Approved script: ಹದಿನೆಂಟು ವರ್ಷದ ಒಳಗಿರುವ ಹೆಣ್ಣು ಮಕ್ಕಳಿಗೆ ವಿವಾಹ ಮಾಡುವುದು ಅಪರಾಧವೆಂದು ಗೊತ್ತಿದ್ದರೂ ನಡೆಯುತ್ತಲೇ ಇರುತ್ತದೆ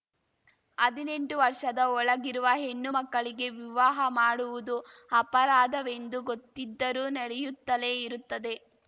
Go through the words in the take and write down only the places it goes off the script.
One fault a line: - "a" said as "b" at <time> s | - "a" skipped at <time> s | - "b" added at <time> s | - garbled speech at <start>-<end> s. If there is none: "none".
none